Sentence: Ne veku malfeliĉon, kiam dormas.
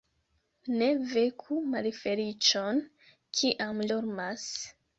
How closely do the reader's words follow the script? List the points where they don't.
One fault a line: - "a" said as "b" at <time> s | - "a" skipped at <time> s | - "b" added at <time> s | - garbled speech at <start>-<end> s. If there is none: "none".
none